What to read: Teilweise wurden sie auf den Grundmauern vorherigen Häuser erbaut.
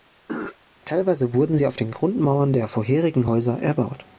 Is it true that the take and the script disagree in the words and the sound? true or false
true